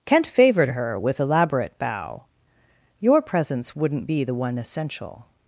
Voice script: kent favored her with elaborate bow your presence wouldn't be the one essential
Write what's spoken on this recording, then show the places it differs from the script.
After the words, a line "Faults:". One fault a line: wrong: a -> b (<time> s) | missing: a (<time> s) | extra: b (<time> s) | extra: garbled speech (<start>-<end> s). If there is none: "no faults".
kent favored her with elaborate bow your presence wouldn't be the one essential
Faults:
no faults